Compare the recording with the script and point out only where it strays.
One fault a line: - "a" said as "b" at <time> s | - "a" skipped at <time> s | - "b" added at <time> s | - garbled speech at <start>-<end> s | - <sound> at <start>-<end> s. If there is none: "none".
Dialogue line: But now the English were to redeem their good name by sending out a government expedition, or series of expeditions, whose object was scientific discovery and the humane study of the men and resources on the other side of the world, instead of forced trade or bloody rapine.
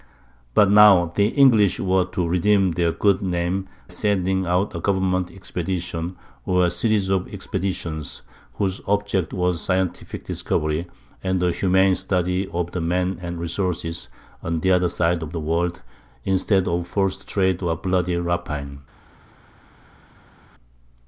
- "by" skipped at 3.7 s